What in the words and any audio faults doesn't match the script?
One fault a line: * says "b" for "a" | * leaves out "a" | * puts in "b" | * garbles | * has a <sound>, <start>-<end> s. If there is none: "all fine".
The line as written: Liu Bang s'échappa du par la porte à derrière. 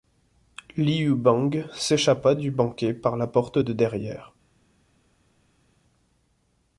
* puts in "banquet"
* says "de" for "à"